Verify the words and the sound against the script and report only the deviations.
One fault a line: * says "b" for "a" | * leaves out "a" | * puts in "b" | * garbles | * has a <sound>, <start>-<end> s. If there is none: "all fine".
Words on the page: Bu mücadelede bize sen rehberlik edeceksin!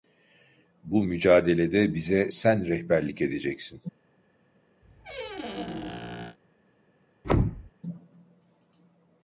* has a squeak, 4.8-6.4 s
* has a thud, 7.2-7.7 s